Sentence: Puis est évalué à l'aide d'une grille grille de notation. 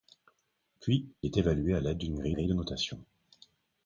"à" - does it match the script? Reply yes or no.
yes